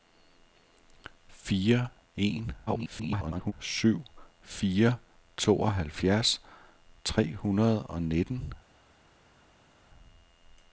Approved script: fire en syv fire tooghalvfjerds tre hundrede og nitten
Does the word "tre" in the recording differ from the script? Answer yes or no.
no